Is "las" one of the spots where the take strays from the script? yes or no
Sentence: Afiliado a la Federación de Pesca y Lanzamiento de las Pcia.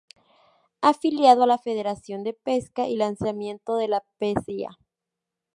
yes